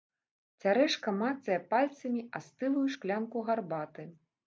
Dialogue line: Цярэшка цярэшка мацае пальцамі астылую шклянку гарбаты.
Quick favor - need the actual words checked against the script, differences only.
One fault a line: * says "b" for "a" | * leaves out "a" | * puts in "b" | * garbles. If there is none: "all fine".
* leaves out "цярэшка"